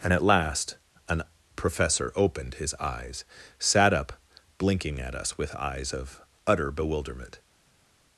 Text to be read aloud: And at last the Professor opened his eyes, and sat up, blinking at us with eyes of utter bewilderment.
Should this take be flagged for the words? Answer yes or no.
yes